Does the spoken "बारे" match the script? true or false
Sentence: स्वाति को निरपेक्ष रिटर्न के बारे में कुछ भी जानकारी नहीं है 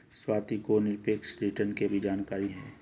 false